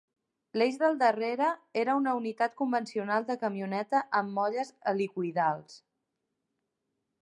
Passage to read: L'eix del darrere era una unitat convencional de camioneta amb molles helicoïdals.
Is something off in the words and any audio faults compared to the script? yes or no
no